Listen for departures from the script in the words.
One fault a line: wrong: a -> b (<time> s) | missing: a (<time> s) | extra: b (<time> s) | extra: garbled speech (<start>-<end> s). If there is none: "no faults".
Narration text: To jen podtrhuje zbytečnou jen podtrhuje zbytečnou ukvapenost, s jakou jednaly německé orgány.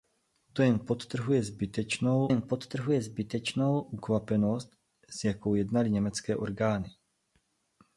no faults